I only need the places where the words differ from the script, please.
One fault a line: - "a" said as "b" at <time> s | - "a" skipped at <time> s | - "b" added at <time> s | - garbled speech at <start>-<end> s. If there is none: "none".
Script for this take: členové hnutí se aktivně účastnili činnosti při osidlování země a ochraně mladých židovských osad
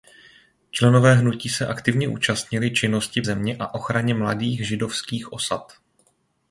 - "při osidlování" skipped at 3.2 s